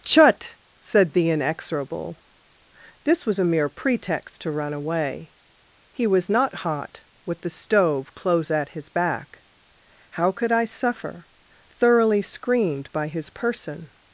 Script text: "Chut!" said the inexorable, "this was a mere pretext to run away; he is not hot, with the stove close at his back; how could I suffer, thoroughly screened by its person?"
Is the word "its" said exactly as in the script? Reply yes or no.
no